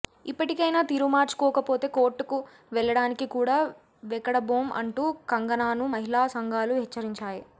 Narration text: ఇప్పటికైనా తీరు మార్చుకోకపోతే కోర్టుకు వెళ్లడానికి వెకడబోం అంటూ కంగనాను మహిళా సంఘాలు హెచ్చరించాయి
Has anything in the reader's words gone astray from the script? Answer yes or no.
yes